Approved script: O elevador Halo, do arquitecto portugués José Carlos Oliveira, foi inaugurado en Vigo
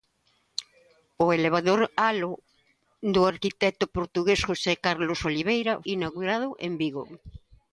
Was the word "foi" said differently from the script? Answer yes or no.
yes